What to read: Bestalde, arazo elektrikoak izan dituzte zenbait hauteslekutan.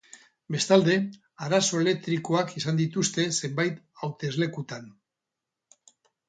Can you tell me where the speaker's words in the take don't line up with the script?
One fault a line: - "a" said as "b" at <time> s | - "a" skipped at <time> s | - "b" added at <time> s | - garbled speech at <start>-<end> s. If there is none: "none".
none